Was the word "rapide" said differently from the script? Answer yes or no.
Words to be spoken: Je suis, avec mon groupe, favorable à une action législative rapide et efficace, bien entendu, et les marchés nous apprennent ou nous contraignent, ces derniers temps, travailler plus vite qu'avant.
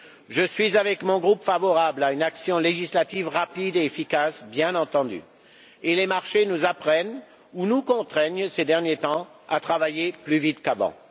no